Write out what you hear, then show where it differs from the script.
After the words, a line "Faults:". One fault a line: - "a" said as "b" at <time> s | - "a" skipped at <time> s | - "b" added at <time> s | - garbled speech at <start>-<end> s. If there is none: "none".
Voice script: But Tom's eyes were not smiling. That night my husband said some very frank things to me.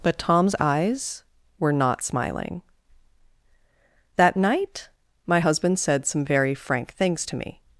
But Tom's eyes were not smiling. That night my husband said some very frank things to me.
Faults:
none